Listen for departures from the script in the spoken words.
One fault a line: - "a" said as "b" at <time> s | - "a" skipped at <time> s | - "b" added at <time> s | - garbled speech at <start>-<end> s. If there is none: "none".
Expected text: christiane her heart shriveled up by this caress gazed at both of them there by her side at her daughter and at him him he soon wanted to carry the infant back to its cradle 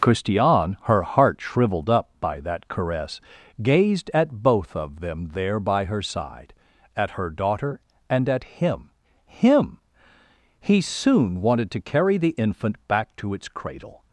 - "this" said as "that" at 2.4 s